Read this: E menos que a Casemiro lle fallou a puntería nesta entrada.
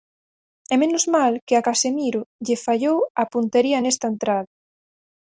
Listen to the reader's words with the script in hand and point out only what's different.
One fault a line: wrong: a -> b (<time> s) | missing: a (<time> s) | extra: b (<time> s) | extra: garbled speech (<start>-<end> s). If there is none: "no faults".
extra: mal (1.1 s)